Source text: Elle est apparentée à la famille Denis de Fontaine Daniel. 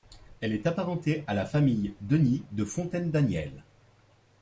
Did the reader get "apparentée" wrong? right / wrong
right